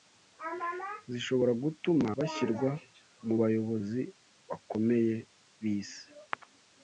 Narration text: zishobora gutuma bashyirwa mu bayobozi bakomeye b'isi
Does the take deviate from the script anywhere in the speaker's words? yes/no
no